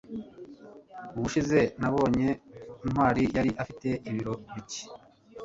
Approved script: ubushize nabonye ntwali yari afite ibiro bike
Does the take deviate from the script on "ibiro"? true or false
false